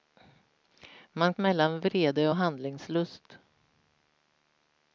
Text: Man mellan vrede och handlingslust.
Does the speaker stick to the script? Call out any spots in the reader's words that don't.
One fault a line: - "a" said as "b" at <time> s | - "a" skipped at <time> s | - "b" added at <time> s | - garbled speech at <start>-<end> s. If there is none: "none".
none